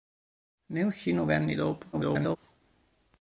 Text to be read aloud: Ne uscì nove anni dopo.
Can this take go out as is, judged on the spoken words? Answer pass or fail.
fail